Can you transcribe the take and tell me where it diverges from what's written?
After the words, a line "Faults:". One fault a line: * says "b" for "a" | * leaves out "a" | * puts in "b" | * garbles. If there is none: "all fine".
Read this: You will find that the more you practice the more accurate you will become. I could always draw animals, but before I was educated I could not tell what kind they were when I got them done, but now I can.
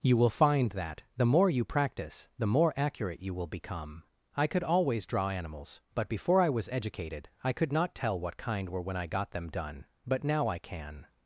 You will find that the more you practice the more accurate you will become. I could always draw animals, but before I was educated I could not tell what kind were when I got them done, but now I can.
Faults:
* leaves out "they"